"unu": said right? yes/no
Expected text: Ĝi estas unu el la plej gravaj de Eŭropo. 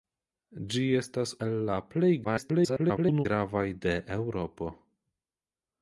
no